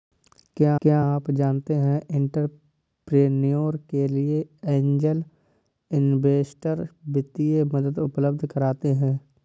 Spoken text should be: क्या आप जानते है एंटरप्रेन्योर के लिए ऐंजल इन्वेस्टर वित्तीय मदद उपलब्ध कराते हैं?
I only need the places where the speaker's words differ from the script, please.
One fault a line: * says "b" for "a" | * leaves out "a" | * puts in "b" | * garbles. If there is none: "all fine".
* puts in "क्या"